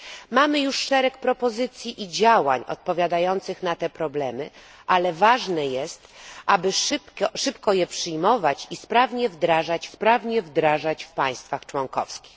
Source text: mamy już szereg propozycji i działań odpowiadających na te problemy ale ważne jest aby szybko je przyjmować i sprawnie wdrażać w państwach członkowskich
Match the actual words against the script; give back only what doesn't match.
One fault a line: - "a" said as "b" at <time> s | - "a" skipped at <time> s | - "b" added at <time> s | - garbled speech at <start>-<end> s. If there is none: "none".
- "sprawnie wdrażać" added at 9.9 s